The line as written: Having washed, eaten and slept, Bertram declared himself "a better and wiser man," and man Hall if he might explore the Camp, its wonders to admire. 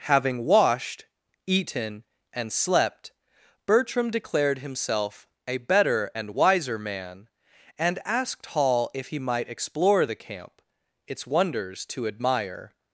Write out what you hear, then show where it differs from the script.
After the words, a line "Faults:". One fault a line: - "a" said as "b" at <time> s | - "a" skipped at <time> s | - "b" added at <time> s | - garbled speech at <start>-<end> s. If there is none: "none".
Having washed, eaten and slept, Bertram declared himself "a better and wiser man," and asked Hall if he might explore the Camp, its wonders to admire.
Faults:
- "man" said as "asked" at 8.0 s